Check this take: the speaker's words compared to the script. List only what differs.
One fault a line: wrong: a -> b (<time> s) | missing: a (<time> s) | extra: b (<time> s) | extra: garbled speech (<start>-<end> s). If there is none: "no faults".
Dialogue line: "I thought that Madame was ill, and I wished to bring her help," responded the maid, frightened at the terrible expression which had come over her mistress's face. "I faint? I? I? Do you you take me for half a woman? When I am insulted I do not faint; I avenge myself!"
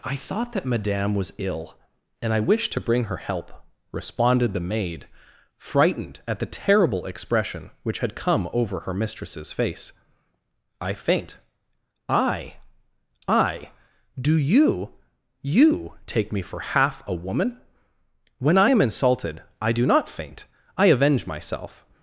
no faults